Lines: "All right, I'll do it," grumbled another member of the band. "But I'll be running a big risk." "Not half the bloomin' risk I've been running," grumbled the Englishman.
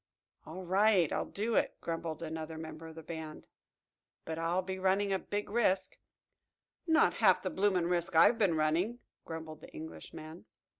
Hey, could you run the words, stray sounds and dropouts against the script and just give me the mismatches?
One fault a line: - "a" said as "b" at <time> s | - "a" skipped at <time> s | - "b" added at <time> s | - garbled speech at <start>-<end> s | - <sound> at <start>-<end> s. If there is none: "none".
none